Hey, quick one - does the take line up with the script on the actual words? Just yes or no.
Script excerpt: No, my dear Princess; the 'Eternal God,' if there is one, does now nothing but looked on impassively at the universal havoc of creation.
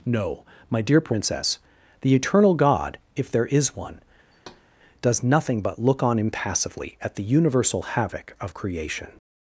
no